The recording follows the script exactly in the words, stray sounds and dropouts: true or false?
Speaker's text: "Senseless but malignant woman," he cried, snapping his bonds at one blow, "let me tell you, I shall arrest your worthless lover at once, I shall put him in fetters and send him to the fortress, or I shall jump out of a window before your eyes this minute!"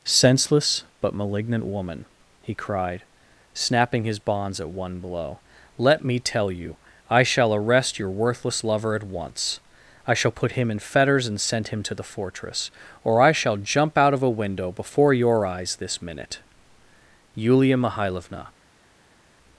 false